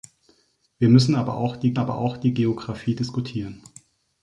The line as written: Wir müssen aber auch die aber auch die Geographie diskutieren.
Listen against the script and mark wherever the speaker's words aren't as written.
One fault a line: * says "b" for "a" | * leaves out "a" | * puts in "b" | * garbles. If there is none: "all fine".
all fine